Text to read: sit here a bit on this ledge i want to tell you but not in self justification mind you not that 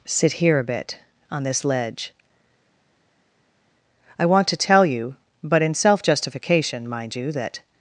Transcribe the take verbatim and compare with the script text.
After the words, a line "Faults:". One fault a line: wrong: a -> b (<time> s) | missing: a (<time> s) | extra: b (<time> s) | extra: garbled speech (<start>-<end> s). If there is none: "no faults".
sit here a bit on this ledge i want to tell you but in self justification mind you that
Faults:
missing: not (5.6 s)
missing: not (7.3 s)